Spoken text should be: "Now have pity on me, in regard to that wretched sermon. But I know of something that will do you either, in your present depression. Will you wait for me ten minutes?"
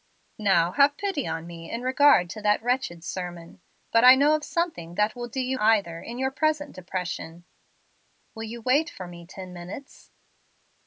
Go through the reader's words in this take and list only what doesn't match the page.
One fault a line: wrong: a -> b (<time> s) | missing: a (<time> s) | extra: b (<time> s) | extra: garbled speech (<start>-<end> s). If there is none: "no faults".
no faults